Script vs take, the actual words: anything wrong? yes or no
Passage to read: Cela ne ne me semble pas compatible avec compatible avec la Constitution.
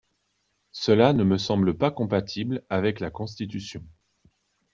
yes